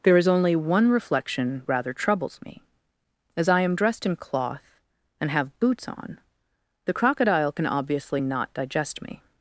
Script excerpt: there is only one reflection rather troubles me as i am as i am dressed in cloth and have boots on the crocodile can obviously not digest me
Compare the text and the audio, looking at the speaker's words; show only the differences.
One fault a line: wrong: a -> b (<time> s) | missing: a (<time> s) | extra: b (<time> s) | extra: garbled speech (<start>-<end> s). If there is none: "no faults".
missing: as i am (3.8 s)